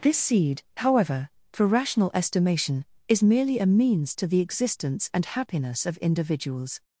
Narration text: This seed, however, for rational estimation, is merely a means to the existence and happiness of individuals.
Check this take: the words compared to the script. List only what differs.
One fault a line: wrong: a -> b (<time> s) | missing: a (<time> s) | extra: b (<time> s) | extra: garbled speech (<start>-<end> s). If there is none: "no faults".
no faults